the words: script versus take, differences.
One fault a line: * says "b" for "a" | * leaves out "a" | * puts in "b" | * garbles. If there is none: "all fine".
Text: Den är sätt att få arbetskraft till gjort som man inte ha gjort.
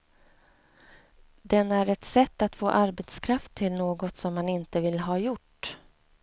* puts in "ett"
* says "något" for "gjort"
* puts in "vill"